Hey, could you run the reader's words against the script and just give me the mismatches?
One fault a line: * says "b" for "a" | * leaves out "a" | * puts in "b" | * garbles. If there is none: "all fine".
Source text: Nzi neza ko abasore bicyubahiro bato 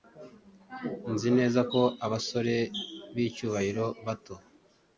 all fine